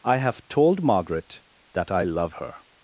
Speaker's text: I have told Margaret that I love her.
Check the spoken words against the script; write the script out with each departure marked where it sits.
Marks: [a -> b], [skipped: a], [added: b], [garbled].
I have told Margaret that I love her.